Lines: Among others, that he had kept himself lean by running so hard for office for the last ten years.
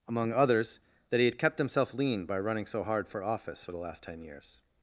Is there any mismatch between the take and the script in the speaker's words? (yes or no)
no